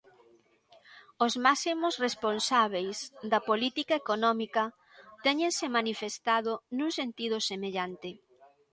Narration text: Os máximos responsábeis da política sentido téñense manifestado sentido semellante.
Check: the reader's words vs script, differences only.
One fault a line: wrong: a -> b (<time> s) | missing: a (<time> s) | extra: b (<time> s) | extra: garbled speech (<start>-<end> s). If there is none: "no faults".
wrong: sentido -> económica (4.0 s)
extra: nun (6.8 s)